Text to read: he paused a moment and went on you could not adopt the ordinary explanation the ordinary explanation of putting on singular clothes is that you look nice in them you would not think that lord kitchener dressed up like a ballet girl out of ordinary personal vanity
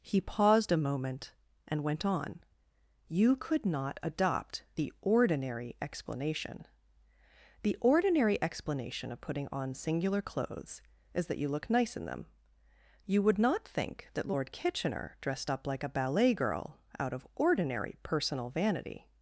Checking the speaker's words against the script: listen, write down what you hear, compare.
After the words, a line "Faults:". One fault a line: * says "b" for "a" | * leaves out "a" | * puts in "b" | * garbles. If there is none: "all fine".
he paused a moment and went on you could not adopt the ordinary explanation the ordinary explanation of putting on singular clothes is that you look nice in them you would not think that lord kitchener dressed up like a ballet girl out of ordinary personal vanity
Faults:
all fine